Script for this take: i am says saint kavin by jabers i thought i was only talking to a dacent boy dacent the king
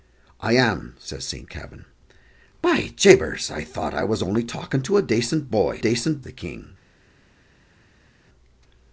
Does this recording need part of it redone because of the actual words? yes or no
no